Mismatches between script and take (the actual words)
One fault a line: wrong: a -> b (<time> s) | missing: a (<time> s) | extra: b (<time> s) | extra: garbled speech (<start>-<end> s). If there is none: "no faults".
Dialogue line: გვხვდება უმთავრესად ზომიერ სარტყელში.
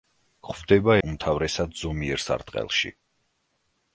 no faults